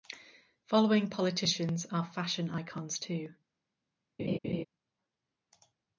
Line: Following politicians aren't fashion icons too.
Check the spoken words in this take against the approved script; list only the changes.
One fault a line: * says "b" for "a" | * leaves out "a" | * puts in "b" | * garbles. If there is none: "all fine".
* says "are" for "aren't"